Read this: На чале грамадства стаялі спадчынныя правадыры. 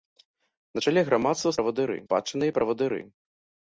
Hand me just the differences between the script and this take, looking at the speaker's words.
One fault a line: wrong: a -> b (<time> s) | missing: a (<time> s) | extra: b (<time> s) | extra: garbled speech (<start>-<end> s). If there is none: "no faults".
wrong: стаялі -> правадыры (1.6 s)